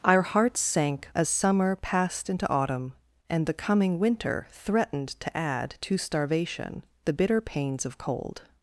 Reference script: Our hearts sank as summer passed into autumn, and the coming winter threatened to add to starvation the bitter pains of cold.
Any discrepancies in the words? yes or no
no